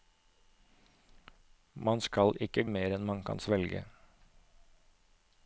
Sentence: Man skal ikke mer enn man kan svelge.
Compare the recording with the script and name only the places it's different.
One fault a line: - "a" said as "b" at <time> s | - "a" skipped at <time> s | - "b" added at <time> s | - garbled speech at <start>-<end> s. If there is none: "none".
none